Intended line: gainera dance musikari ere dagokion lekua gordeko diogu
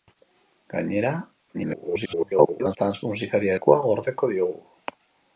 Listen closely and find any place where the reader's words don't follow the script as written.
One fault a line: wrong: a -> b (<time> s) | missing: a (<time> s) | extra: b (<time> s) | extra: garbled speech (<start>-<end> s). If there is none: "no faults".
extra: garbled speech (1.5-2.8 s)
missing: ere dagokion (3.5 s)